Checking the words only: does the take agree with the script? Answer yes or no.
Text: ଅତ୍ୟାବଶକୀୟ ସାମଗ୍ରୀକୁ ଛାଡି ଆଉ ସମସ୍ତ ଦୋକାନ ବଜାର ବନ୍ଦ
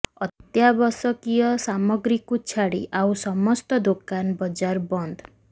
yes